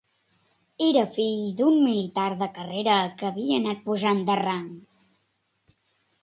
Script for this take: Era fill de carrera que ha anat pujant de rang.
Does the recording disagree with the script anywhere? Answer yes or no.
yes